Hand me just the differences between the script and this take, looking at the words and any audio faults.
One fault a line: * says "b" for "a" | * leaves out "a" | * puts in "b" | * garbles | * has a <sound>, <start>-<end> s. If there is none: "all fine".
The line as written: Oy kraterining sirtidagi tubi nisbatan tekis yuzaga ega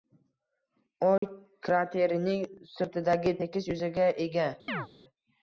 * has a dropout, 1.2-1.2 s
* leaves out "tubi nisbatan"
* has a chirp, 4.7-4.9 s